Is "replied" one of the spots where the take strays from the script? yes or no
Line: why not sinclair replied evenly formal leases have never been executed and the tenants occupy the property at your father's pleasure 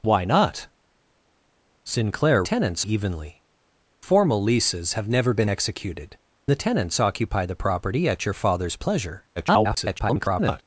yes